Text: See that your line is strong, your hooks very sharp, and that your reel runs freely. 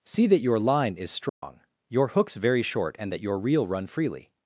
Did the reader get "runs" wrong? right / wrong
wrong